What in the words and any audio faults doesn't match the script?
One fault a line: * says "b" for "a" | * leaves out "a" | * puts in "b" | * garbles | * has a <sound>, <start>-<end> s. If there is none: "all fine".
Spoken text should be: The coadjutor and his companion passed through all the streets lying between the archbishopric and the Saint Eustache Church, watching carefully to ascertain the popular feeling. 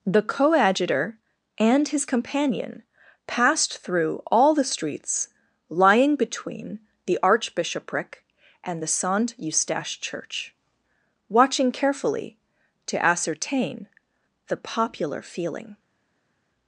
all fine